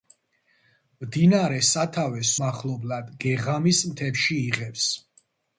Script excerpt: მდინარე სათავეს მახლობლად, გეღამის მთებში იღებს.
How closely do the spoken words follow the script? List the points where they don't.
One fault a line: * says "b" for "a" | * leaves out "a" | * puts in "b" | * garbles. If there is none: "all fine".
all fine